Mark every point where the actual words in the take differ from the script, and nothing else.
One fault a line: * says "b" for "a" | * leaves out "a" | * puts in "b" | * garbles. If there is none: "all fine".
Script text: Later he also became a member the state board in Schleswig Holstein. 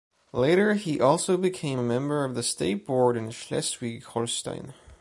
* puts in "of"